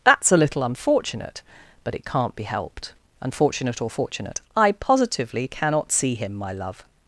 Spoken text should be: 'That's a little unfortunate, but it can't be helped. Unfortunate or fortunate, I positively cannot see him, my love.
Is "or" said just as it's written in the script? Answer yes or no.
yes